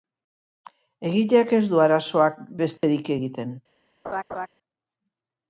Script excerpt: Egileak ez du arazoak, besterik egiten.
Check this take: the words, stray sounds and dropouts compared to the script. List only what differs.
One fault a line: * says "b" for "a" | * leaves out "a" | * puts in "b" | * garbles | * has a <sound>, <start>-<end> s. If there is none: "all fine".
* has a dropout, 2.8-2.8 s
* has a laugh, 4.0-4.5 s